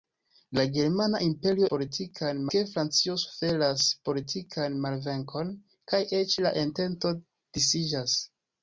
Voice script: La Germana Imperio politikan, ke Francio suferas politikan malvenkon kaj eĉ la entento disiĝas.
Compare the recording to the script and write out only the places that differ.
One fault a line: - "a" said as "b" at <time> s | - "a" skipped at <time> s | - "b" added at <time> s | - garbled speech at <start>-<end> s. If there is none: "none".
none